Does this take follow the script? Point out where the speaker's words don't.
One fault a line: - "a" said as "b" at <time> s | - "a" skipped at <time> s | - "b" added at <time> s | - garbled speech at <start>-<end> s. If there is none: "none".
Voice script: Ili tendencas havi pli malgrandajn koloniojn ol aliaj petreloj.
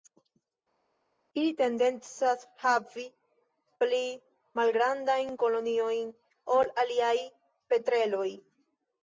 none